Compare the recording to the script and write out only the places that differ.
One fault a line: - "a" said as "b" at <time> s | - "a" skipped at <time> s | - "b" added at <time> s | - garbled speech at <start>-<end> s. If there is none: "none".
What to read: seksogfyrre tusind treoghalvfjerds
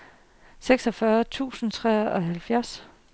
none